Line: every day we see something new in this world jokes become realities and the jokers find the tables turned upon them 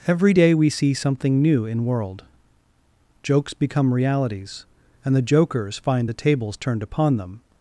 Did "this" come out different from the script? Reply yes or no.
yes